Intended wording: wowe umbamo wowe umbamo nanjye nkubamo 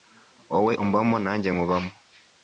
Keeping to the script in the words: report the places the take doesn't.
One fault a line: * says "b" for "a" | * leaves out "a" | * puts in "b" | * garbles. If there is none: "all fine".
* leaves out "wowe umbamo"